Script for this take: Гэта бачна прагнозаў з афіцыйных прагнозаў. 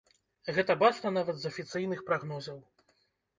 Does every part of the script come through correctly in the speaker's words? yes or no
no